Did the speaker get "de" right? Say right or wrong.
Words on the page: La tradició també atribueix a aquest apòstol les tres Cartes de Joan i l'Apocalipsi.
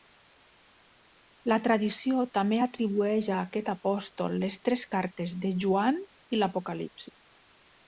right